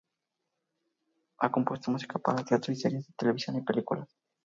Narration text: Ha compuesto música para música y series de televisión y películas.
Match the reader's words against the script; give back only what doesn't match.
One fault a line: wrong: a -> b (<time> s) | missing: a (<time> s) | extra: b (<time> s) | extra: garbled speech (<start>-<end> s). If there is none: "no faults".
wrong: música -> teatro (2.4 s)